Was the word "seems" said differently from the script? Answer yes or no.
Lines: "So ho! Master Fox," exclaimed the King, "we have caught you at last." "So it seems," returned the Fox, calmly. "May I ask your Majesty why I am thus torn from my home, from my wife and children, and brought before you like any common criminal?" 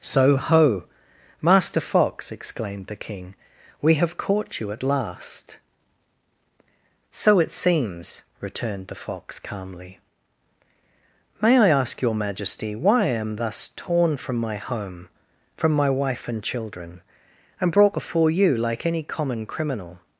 no